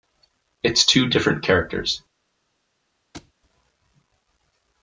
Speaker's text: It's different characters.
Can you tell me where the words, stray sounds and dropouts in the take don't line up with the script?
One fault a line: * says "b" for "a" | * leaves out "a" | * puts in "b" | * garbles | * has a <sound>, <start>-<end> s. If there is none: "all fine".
* puts in "two"
* has a thud, 3.1-3.3 s